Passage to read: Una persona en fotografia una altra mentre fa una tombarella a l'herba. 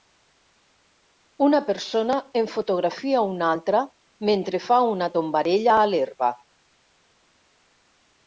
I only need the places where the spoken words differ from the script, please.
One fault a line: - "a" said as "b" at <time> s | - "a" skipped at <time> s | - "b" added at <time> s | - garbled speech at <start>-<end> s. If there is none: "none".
none